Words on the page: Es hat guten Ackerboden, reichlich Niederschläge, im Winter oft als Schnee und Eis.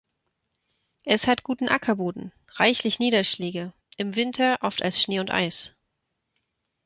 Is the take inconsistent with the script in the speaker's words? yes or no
no